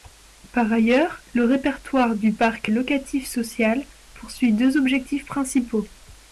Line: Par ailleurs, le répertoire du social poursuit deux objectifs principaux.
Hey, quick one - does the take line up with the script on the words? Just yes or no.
no